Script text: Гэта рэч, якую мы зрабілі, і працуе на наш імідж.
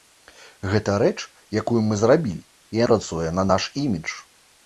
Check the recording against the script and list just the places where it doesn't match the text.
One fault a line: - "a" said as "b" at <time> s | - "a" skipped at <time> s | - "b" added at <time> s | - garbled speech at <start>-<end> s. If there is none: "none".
none